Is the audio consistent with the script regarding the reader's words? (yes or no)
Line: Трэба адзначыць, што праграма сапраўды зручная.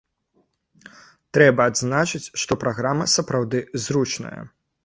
yes